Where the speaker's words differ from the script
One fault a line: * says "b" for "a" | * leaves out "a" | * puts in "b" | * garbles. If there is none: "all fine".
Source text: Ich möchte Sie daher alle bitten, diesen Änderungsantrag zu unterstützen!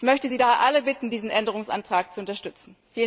all fine